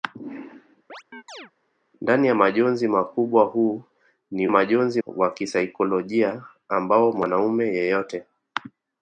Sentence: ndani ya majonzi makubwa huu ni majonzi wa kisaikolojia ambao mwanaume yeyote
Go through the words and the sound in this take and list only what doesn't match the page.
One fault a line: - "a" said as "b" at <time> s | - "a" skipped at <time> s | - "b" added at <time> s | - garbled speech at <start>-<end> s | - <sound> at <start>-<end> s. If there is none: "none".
- chirp at 0.9-1.5 s